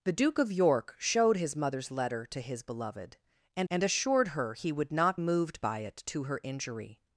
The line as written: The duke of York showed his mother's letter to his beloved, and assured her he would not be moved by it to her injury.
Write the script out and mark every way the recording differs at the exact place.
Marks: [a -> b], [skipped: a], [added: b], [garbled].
The duke of York showed his mother's letter to his beloved, and [added: and] assured her he would not [skipped: be] moved by it to her injury.